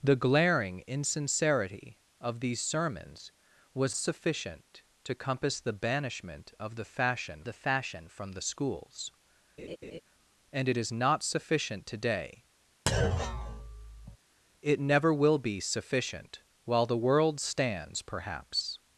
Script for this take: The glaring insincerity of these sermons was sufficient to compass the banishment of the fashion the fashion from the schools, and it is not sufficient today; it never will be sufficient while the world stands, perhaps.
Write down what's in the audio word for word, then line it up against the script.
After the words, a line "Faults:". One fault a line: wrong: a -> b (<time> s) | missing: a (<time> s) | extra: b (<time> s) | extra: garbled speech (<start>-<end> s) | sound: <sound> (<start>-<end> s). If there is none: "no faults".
The glaring insincerity of these sermons was sufficient to compass the banishment of the fashion the fashion from the schools, and it is not sufficient today; it never will be sufficient while the world stands, perhaps.
Faults:
sound: laugh (9.6-10.0 s)
sound: thud (12.9-14.2 s)